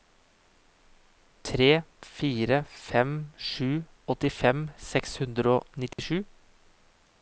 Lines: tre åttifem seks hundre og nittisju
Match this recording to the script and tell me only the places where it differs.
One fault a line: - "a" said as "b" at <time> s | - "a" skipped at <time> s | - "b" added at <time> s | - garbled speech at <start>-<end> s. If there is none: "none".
- "fire fem sju" added at 2.1 s